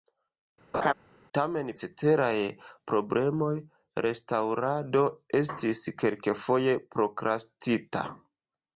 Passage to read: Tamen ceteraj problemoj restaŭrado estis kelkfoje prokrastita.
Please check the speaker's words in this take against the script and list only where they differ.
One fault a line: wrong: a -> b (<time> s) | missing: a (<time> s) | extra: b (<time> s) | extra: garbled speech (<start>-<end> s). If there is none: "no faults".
no faults